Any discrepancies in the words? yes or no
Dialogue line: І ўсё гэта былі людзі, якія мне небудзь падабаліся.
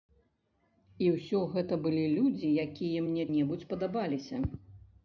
no